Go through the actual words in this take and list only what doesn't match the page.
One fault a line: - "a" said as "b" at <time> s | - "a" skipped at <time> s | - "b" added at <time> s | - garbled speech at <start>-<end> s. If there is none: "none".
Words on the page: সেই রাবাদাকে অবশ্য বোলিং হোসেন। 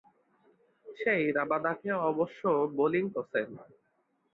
none